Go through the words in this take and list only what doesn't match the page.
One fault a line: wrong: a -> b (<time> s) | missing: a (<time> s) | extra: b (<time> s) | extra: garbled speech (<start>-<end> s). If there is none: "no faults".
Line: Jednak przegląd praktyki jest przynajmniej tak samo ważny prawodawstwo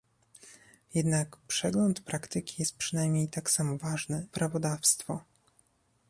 no faults